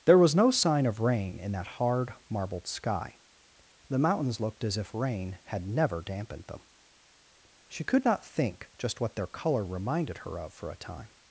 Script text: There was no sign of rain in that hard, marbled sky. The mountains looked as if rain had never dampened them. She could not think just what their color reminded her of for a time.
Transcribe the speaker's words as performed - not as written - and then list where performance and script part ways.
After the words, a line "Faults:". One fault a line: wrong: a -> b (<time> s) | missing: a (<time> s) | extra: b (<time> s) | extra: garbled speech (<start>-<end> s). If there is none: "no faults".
There was no sign of rain in that hard, marbled sky. The mountains looked as if rain had never dampened them. She could not think just what their color reminded her of for a time.
Faults:
no faults